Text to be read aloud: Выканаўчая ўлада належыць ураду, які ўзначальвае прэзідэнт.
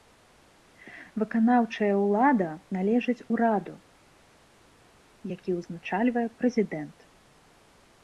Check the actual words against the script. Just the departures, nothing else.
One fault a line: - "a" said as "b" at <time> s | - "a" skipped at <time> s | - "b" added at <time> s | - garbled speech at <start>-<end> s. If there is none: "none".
none